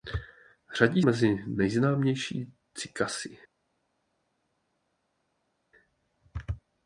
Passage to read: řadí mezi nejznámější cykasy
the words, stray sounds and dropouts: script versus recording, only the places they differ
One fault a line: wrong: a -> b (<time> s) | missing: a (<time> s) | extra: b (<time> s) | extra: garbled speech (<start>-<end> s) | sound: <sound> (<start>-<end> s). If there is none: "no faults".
no faults